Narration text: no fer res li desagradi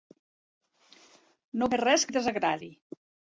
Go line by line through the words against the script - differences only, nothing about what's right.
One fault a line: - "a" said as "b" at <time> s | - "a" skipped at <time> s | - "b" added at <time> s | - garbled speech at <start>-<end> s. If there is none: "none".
none